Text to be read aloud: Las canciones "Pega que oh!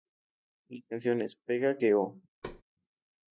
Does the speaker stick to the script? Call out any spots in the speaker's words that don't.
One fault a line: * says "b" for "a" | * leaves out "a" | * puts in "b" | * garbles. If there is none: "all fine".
all fine